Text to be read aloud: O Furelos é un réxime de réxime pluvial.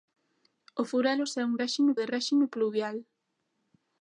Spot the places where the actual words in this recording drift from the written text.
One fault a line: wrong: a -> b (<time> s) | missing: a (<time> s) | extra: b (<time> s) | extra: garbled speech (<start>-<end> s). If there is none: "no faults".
no faults